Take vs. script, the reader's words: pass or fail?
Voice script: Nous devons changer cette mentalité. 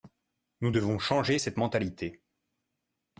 pass